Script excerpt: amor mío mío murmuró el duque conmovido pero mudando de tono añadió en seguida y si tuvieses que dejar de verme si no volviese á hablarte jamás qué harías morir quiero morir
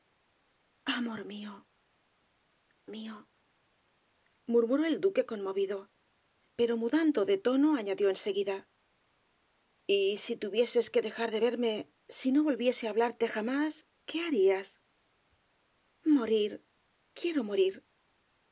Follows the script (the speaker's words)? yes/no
yes